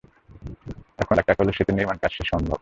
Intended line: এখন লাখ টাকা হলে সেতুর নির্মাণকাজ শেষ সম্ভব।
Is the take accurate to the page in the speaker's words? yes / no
yes